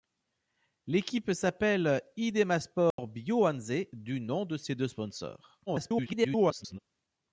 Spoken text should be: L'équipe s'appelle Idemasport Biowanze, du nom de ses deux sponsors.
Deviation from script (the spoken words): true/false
true